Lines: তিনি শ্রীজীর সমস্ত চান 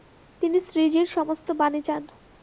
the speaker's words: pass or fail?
fail